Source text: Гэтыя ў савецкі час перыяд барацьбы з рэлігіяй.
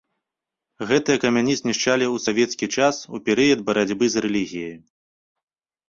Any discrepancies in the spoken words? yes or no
yes